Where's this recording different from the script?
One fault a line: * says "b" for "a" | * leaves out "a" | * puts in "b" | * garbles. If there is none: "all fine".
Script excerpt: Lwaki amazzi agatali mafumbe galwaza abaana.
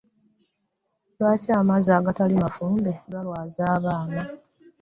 all fine